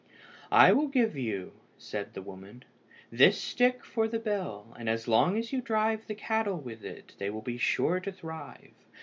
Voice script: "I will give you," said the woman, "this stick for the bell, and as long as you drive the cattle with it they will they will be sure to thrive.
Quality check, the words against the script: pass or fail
fail